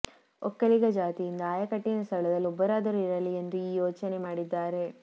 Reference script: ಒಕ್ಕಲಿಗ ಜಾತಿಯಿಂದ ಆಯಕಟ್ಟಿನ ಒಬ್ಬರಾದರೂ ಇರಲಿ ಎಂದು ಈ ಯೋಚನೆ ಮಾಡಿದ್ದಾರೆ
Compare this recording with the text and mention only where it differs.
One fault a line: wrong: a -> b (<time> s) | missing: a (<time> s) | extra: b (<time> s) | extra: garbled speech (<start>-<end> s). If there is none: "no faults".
extra: ಸ್ಥಳದಲ್ಲಿ (2.0 s)